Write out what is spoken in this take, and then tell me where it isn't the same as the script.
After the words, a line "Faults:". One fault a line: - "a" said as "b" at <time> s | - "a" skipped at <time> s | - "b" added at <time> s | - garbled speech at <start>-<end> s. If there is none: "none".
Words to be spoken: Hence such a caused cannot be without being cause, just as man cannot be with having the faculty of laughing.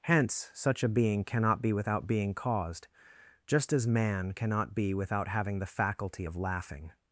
Hence such a being cannot be without being caused, just as man cannot be without having the faculty of laughing.
Faults:
- "caused" said as "being" at 0.9 s
- "cause" said as "caused" at 2.3 s
- "with" said as "without" at 4.9 s